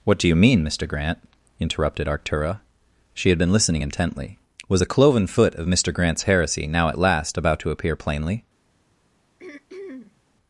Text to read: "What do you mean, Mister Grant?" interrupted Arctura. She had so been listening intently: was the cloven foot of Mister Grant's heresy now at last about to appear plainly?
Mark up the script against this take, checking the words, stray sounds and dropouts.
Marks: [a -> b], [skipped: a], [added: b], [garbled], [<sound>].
"What do you mean, Mister Grant?" interrupted Arctura. She had [skipped: so] been listening intently: was the cloven foot of Mister Grant's heresy now at last about to appear plainly? [throat clearing]